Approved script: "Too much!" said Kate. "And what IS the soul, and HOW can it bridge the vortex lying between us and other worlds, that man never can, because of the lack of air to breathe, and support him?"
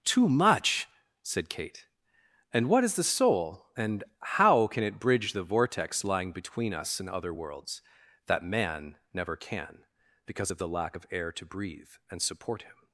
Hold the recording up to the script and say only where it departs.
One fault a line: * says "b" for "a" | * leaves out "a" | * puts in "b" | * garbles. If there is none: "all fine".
all fine